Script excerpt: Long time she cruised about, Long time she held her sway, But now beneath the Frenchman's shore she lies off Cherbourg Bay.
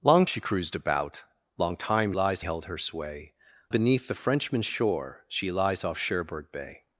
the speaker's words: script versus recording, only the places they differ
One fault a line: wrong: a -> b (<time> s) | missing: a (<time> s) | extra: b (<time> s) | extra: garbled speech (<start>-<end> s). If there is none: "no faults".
missing: time (0.2 s)
wrong: she -> lies (2.1 s)
missing: But now (3.3 s)